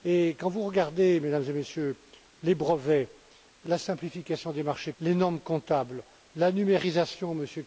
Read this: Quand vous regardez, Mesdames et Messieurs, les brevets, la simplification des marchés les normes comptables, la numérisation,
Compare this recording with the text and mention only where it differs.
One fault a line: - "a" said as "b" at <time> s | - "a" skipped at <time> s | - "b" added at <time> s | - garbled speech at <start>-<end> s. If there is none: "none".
none